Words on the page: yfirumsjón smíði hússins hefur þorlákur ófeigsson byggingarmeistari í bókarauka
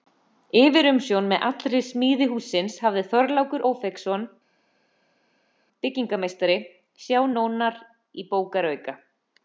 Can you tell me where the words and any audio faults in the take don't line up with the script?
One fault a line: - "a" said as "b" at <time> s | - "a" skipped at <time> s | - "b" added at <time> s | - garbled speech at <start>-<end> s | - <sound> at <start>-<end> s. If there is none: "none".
- "með allri" added at 1.3 s
- "hefur" said as "hafði" at 2.9 s
- "sjá nánar" added at 7.0 s